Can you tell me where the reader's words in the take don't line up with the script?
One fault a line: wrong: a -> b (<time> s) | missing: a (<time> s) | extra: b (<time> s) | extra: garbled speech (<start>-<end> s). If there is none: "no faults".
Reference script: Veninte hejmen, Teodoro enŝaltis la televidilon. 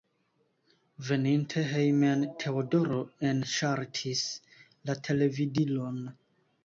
no faults